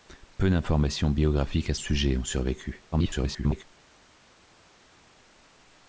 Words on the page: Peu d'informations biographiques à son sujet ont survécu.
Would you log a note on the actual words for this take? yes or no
yes